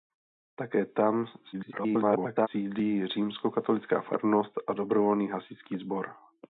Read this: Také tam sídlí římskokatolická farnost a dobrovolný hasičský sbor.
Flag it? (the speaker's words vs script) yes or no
yes